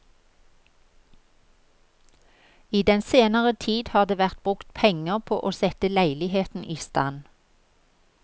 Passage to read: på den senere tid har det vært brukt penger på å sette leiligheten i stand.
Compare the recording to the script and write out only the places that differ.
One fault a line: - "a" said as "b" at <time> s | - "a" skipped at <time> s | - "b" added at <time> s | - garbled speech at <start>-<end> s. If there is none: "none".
- "på" said as "I" at 2.7 s